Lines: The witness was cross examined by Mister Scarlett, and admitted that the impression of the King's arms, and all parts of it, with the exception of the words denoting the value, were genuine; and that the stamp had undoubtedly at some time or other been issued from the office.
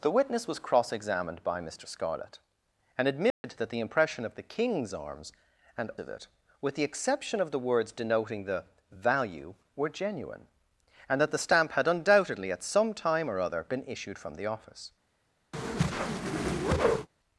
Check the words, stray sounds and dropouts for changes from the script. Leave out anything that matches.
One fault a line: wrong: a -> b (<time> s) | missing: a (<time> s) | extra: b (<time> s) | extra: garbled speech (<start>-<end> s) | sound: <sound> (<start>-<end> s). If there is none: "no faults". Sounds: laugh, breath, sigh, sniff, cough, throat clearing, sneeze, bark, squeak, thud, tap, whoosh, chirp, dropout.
sound: dropout (3.3-3.4 s)
missing: all parts (5.9 s)
sound: whoosh (15.5-17.1 s)